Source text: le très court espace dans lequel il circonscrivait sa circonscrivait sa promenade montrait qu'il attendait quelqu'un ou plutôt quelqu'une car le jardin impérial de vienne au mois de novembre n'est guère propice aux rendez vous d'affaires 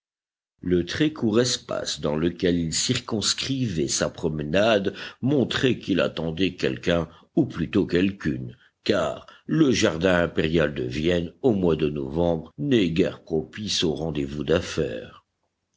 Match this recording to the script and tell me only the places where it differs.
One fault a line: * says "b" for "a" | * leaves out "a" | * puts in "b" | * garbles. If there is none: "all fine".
* leaves out "circonscrivait sa"